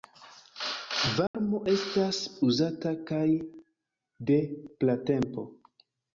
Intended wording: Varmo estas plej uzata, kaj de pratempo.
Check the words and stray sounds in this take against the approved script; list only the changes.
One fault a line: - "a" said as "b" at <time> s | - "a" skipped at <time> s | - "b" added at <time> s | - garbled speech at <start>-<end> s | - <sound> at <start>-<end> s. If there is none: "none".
- dropout at 1.3-1.3 s
- "plej" skipped at 2.2 s